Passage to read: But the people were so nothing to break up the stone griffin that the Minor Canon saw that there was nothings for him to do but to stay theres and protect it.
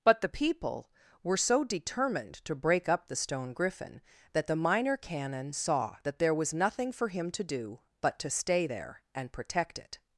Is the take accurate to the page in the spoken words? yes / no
no